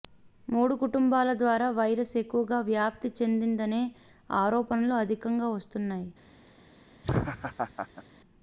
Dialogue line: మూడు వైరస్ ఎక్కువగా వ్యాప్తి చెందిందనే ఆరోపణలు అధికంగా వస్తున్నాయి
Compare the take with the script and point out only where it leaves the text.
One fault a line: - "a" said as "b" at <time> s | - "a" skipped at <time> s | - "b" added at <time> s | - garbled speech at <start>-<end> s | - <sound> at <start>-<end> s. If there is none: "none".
- "కుటుంబాల ద్వారా" added at 0.8 s
- laugh at 7.0-8.0 s